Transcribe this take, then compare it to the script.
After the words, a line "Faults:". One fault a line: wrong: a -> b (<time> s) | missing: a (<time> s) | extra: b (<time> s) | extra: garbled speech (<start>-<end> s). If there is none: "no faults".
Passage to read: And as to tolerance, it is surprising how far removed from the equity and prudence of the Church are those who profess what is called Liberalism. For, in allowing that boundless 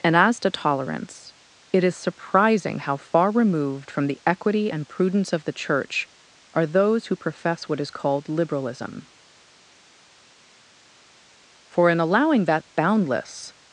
And as to tolerance, it is surprising how far removed from the equity and prudence of the Church are those who profess what is called Liberalism. For, in allowing that boundless
Faults:
no faults